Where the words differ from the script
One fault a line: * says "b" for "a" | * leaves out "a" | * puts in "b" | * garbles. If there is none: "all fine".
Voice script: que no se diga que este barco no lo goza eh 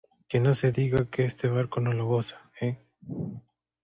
all fine